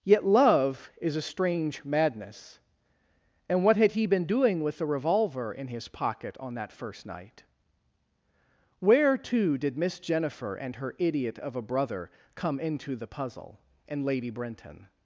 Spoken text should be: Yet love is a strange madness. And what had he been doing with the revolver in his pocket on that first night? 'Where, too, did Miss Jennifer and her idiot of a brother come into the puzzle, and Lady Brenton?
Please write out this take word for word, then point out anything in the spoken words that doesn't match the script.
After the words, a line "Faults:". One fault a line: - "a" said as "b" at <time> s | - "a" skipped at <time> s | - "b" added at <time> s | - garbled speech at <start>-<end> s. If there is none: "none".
Yet love is a strange madness. And what had he been doing with the revolver in his pocket on that first night? 'Where, too, did Miss Jennifer and her idiot of a brother come into the puzzle, and Lady Brenton?
Faults:
none